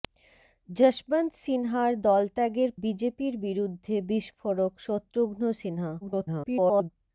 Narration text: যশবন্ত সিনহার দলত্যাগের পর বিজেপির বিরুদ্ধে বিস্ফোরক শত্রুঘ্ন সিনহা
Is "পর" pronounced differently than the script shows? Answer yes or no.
yes